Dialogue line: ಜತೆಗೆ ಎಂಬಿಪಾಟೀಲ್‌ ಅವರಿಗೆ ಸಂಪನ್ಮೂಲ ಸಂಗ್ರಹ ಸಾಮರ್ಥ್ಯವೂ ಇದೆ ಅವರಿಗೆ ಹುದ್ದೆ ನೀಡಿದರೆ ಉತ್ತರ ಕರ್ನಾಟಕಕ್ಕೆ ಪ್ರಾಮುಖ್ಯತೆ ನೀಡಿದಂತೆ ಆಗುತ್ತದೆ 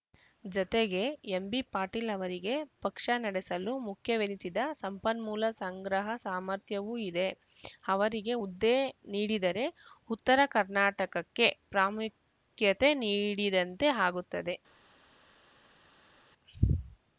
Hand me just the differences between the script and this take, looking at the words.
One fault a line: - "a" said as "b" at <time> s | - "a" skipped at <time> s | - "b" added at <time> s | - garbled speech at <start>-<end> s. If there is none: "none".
- "ಪಕ್ಷ ನಡೆಸಲು ಮುಖ್ಯವೆನಿಸಿದ" added at 2.8 s